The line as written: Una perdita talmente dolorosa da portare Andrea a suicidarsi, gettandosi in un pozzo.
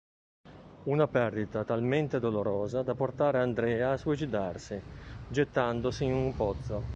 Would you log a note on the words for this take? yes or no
no